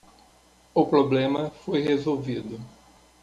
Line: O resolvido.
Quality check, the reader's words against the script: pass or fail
fail